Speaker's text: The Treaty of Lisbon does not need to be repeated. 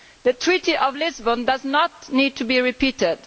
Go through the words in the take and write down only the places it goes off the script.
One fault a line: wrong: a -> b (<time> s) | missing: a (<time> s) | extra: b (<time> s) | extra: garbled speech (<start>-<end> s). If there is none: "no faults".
no faults